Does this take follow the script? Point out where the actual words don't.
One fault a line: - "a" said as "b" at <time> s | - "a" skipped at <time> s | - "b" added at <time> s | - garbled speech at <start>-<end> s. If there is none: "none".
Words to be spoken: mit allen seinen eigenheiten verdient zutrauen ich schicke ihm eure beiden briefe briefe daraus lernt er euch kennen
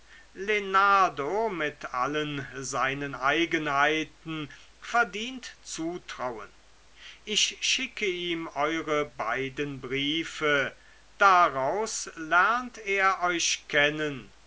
- "briefe" skipped at 10.7 s